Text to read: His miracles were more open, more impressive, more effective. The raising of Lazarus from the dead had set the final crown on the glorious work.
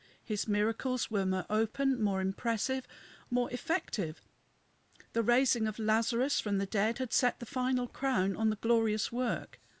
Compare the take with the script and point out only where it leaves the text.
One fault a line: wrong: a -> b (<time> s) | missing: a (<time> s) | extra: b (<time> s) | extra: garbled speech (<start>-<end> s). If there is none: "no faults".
no faults